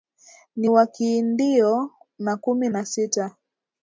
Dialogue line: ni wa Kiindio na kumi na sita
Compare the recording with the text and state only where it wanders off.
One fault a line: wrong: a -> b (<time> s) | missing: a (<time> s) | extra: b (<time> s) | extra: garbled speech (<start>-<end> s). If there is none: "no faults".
no faults